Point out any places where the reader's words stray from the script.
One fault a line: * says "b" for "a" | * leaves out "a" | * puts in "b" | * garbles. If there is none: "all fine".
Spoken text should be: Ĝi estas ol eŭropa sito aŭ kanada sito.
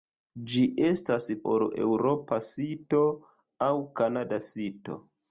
all fine